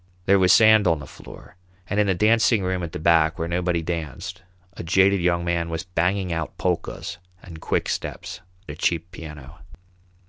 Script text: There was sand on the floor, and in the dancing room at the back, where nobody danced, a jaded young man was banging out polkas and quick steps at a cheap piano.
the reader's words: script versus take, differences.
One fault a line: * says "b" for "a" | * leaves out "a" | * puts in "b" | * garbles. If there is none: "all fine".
* leaves out "at"